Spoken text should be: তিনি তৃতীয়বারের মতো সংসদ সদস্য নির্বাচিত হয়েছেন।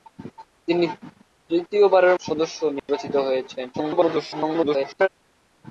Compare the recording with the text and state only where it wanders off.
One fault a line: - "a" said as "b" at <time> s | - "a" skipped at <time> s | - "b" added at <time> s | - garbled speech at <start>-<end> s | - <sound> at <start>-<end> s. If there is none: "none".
- "মতো সংসদ" skipped at 2.1 s
- dropout at 2.8-2.9 s
- garbled speech at 3.7-5.1 s